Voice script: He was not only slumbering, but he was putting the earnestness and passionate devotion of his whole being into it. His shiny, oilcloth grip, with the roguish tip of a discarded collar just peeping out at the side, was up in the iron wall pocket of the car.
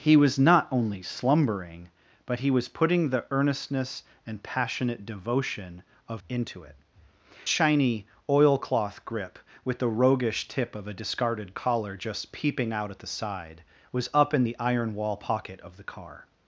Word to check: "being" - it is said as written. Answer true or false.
false